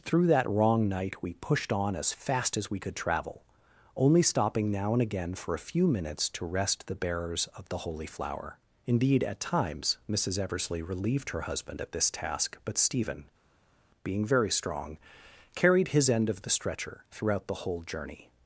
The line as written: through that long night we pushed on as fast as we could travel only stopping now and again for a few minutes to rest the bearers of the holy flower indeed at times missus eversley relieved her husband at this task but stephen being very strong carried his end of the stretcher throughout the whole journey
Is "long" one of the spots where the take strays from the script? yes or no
yes